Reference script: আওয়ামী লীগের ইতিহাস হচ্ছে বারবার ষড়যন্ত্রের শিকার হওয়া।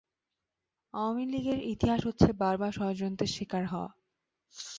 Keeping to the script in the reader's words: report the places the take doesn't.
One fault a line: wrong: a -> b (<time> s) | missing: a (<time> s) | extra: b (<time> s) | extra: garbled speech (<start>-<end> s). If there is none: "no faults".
no faults